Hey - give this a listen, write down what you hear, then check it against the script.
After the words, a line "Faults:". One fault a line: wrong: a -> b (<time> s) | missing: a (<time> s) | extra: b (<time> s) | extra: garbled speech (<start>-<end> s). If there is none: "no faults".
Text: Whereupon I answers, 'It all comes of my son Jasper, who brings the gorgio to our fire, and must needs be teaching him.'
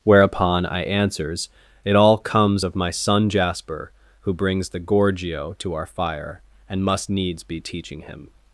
Whereupon I answers, 'It all comes of my son Jasper, who brings the gorgio to our fire, and must needs be teaching him.'
Faults:
no faults